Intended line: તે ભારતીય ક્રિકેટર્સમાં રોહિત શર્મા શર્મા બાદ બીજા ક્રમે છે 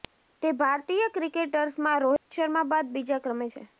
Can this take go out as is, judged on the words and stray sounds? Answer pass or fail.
fail